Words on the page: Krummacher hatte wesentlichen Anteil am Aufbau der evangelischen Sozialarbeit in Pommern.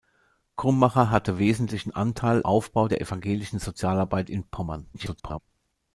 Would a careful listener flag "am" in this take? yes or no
yes